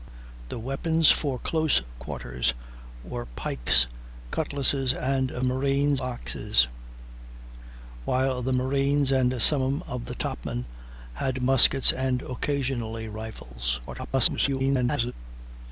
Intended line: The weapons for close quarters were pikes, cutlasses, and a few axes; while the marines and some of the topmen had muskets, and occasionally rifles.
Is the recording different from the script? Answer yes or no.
yes